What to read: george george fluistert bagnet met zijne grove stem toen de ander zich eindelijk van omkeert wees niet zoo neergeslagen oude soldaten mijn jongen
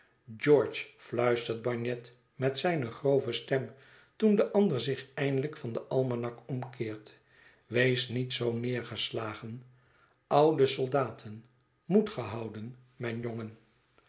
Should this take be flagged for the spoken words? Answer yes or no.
yes